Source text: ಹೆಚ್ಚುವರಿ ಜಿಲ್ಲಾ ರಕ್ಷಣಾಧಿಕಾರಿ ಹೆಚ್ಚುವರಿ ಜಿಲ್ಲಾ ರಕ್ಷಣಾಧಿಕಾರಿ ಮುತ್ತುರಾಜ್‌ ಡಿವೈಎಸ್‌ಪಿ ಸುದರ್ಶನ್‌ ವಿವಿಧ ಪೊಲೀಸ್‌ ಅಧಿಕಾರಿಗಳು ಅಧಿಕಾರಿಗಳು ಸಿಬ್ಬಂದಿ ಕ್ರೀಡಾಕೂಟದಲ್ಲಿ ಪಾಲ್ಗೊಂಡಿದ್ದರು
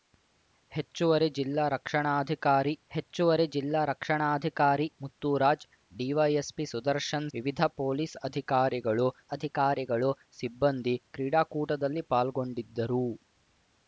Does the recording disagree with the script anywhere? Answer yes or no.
no